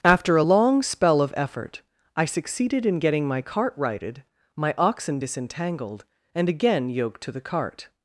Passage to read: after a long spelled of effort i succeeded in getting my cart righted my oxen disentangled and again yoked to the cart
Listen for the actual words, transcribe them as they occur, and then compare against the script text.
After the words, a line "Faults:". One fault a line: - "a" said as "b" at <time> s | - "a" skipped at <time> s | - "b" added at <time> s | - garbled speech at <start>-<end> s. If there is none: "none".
after a long spell of effort i succeeded in getting my cart righted my oxen disentangled and again yoked to the cart
Faults:
- "spelled" said as "spell" at 0.8 s